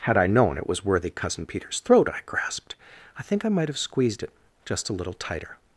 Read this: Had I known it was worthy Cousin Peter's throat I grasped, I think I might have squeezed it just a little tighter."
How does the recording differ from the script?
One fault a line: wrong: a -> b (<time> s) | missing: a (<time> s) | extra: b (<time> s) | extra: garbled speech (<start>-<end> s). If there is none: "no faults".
no faults